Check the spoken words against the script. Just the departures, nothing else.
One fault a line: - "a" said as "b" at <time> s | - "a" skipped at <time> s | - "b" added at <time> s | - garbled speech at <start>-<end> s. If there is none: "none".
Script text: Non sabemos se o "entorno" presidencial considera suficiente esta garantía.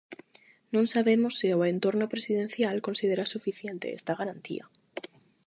none